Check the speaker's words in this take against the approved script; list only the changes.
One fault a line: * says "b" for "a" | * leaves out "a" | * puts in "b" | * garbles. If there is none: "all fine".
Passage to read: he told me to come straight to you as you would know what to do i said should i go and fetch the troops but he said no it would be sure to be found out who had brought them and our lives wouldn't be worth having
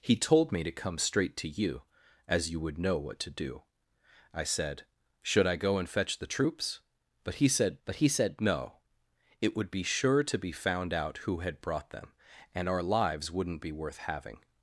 * puts in "but he said"